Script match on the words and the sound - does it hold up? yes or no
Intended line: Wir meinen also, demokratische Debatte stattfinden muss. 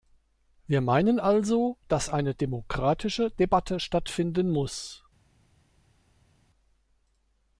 no